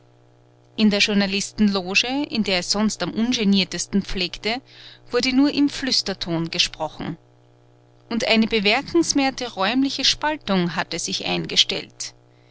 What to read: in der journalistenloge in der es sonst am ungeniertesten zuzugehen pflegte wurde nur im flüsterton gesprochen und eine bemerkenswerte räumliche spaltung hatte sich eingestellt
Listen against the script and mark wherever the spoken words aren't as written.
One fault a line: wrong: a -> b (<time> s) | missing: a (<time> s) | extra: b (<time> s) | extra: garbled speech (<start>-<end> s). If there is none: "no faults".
missing: zuzugehen (4.0 s)